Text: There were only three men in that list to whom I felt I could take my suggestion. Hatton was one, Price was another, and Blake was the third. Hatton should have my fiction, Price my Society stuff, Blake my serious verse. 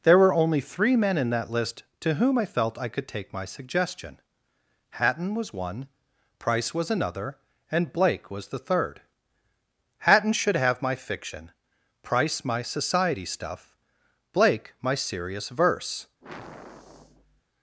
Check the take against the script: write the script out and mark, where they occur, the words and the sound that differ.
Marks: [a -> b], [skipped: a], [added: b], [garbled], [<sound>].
There were only three men in that list to whom I felt I could take my suggestion. Hatton was one, Price was another, and Blake was the third. Hatton should have my fiction, Price my Society stuff, Blake my serious verse. [sigh]